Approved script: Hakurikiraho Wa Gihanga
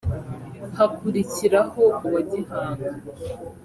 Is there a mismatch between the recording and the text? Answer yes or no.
no